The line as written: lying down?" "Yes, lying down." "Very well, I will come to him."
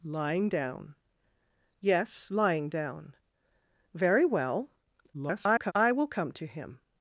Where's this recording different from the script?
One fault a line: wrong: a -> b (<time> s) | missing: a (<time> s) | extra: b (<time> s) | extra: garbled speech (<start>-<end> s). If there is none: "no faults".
extra: garbled speech (5.1-5.7 s)